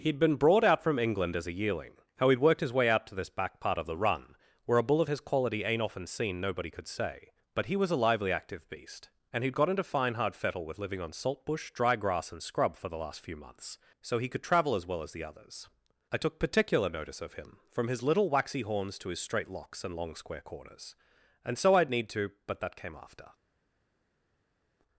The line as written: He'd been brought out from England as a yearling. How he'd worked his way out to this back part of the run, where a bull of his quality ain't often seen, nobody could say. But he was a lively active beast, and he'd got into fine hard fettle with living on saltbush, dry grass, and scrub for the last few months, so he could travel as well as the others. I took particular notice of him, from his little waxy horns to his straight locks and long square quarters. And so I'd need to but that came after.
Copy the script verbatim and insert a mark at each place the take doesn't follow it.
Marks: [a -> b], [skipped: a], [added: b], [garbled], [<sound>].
He'd been brought out from England as a yearling. How he'd worked his way out to this back part of the run, where a bull of his quality ain't often seen, nobody could say. But he was a lively active beast, and he'd got into fine hard fettle with living on saltbush, dry grass, and scrub for the last few months, so he could travel as well as the others. I took particular notice of him, from his little waxy horns to his straight locks and long square [quarters. -> corners] And so I'd need to but that came after.